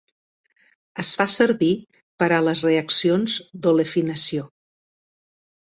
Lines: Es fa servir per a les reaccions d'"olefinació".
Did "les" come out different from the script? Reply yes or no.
no